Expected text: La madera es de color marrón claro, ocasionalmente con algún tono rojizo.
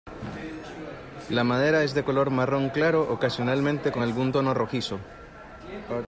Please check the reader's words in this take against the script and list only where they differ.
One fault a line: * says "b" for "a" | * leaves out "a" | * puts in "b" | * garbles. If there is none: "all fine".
all fine